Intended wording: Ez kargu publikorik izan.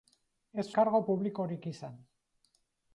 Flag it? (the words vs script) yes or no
no